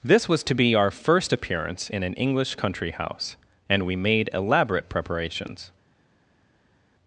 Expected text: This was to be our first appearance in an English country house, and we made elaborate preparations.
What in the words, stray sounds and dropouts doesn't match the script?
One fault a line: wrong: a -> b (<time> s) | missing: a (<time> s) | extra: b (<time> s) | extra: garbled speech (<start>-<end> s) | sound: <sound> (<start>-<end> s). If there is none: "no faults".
no faults